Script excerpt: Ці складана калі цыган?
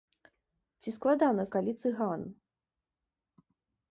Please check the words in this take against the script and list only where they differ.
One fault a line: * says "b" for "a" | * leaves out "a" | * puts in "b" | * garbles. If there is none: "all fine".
all fine